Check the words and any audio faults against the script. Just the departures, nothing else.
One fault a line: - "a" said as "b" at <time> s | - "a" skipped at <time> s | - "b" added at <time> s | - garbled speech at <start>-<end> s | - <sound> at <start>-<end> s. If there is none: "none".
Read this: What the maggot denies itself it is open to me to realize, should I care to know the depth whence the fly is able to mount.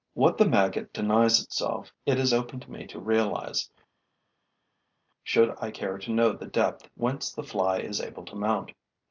none